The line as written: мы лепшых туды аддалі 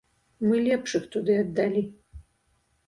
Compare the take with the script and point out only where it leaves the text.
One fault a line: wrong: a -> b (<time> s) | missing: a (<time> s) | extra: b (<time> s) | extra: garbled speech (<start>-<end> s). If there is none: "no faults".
no faults